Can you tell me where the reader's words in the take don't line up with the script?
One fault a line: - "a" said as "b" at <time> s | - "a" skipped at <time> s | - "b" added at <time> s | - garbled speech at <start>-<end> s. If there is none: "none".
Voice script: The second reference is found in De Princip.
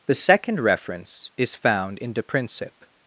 none